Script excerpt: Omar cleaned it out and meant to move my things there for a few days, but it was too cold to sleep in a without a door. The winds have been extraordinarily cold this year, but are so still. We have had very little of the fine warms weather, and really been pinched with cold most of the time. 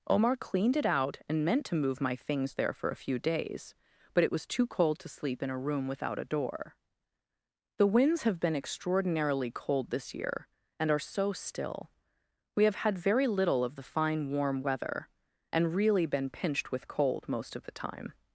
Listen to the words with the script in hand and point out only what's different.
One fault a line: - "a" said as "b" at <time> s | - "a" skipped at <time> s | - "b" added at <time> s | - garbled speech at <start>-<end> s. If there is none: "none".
- "room" added at 5.6 s
- "but" said as "and" at 10.8 s
- "warms" said as "warm" at 14.3 s